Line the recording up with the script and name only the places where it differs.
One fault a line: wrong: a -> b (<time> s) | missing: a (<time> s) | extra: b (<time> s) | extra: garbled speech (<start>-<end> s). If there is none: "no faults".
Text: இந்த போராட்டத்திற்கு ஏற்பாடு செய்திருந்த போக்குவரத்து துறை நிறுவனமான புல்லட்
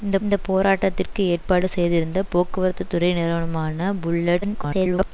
extra: இந்த (0.2 s)
extra: garbled speech (4.4-5.1 s)